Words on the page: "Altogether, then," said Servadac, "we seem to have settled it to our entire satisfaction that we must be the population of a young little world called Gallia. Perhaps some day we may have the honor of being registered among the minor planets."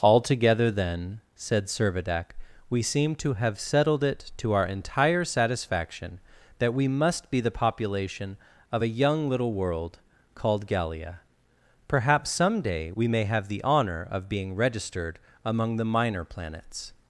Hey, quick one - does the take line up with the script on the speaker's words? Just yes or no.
yes